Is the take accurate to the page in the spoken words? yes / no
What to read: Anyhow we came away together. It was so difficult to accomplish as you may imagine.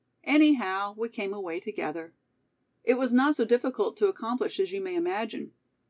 no